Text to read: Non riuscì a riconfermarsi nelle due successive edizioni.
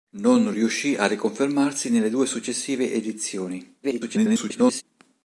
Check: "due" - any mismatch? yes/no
no